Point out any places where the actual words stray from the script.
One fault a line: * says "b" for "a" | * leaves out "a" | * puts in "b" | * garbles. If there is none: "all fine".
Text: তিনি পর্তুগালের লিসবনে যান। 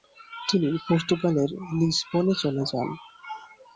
* puts in "চলে"